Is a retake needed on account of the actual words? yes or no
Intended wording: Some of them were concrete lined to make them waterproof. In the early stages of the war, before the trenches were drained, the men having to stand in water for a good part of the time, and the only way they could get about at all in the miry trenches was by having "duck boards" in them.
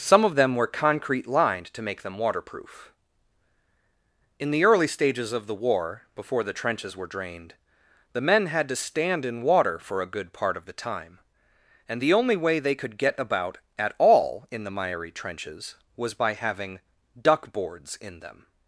yes